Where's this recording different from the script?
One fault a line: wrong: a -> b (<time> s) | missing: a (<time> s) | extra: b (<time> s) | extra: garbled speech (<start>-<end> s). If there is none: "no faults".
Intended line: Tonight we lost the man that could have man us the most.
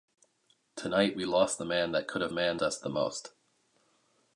no faults